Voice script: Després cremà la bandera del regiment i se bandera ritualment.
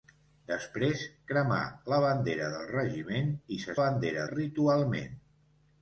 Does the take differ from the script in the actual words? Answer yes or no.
no